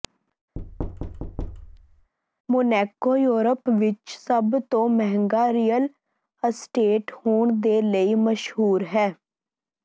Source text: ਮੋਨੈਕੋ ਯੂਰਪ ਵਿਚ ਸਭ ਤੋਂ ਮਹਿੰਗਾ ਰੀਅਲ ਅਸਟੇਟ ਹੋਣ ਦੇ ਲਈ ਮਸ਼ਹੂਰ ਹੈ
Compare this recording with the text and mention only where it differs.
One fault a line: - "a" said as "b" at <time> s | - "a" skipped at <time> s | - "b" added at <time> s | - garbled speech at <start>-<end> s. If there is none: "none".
none